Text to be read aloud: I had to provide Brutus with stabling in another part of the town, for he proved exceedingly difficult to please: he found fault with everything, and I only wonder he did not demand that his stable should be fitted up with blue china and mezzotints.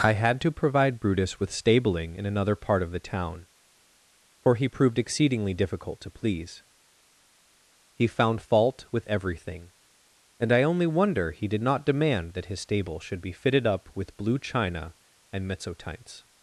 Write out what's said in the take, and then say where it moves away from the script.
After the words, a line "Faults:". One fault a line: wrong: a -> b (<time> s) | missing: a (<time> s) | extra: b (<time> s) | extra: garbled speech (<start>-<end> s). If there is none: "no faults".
I had to provide Brutus with stabling in another part of the town, for he proved exceedingly difficult to please: he found fault with everything, and I only wonder he did not demand that his stable should be fitted up with blue china and mezzotints.
Faults:
no faults